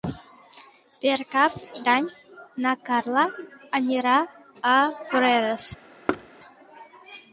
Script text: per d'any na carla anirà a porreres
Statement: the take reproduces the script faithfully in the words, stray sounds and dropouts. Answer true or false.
false